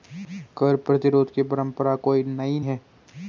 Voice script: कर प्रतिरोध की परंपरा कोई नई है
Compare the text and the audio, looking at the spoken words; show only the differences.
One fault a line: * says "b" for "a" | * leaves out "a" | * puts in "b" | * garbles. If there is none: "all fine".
all fine